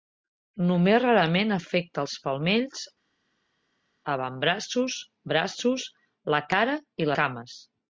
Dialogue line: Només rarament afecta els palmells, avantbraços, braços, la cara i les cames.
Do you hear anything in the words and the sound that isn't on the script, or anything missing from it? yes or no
yes